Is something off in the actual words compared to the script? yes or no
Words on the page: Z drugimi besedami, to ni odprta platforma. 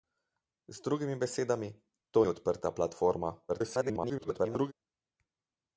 yes